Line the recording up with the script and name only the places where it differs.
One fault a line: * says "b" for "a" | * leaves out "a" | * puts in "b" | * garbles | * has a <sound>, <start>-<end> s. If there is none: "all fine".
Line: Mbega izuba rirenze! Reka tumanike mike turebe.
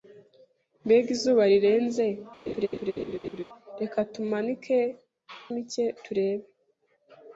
* has a laugh, 2.5-3.4 s